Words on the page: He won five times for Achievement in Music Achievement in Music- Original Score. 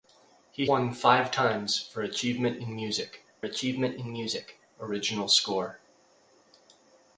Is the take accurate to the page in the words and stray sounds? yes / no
yes